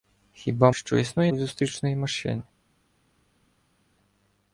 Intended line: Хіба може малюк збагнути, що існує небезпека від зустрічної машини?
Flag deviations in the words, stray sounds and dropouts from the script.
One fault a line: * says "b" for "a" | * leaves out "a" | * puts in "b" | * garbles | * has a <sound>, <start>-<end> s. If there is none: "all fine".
* leaves out "може малюк збагнути"
* leaves out "небезпека"